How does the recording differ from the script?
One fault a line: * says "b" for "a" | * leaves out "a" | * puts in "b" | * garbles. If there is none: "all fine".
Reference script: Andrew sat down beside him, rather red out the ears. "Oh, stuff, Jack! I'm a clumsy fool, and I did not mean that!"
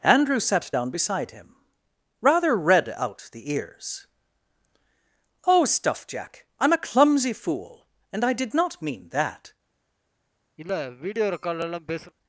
all fine